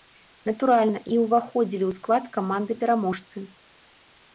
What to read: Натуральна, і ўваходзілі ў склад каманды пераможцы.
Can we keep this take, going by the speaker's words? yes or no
yes